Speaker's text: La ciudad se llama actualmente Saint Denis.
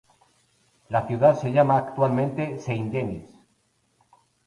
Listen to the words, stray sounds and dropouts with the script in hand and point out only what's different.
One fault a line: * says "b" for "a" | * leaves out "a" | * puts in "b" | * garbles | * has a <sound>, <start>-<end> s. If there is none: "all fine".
all fine